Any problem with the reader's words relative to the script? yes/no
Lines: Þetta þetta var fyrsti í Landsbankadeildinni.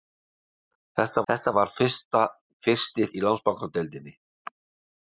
no